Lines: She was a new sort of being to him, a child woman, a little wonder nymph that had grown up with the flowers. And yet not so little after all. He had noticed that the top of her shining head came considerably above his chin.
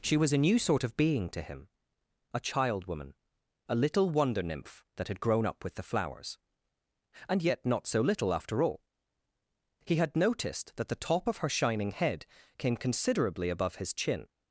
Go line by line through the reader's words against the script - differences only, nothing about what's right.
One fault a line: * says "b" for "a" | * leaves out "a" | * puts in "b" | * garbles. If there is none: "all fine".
all fine